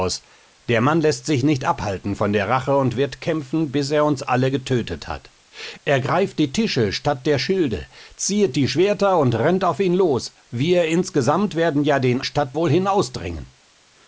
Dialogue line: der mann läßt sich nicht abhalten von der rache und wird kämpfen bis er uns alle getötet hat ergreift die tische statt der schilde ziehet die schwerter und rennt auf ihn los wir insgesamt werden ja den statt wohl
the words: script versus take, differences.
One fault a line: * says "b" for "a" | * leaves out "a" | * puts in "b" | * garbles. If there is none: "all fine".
all fine